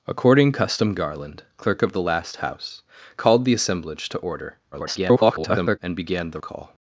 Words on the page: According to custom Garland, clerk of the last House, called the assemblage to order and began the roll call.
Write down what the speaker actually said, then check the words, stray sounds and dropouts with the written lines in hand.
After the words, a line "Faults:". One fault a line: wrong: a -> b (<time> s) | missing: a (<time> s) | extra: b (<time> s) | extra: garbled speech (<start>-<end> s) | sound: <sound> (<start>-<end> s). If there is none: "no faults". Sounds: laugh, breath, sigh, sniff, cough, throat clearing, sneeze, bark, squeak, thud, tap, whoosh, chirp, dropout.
According custom Garland, clerk of the last House, called the assemblage to order [garbled] and began the call.
Faults:
missing: to (0.5 s)
extra: garbled speech (4.7-5.8 s)
missing: roll (6.4 s)